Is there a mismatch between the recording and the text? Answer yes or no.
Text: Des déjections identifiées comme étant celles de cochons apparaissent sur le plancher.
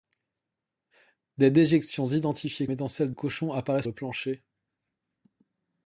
yes